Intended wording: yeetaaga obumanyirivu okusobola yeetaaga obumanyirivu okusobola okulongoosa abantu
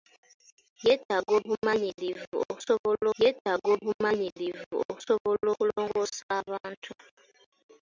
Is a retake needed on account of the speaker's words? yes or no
no